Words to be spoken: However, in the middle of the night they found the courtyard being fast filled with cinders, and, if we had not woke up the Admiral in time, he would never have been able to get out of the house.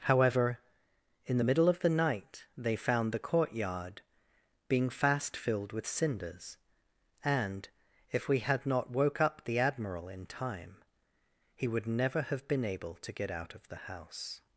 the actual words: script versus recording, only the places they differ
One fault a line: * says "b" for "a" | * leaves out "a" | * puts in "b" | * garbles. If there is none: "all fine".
all fine